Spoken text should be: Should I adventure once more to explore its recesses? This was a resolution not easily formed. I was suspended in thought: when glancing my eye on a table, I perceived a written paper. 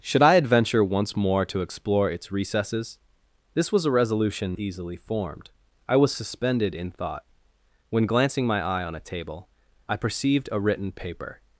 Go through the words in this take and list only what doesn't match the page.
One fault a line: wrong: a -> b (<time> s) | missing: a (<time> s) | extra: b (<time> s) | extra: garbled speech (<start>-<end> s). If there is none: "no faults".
missing: not (4.6 s)